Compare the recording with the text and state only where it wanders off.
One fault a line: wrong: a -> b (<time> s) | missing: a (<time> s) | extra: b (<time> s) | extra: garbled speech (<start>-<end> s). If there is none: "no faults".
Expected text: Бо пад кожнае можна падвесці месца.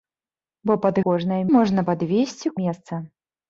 no faults